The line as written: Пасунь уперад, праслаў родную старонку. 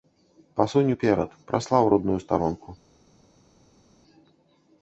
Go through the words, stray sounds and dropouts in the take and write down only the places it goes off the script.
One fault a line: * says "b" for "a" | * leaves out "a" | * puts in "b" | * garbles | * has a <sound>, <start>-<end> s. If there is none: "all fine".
all fine